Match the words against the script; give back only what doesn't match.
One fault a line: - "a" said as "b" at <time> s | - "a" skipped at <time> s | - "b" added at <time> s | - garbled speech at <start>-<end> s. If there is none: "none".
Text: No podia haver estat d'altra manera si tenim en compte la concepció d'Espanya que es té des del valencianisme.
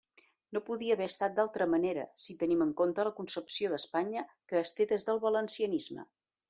none